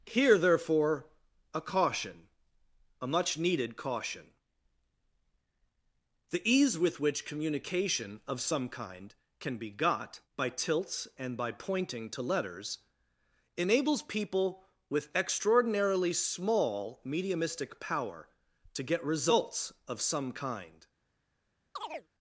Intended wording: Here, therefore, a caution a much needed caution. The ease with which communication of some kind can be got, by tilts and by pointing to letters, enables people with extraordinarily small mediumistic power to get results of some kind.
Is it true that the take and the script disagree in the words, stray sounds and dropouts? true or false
true